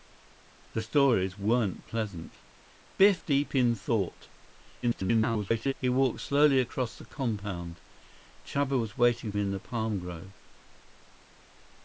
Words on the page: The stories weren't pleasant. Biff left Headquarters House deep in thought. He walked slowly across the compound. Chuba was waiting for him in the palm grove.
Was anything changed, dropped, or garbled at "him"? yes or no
yes